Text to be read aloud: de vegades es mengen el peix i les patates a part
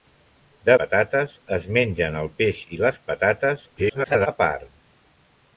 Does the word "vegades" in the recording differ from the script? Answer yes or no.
yes